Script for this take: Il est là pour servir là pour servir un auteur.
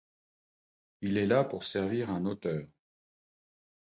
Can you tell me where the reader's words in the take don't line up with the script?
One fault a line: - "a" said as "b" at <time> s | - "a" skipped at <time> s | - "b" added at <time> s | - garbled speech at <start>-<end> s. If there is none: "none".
- "là pour servir" skipped at 2.1 s